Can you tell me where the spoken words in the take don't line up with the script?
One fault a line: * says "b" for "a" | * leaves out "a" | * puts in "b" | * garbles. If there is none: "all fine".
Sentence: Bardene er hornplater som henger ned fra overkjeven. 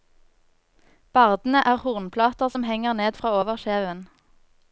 all fine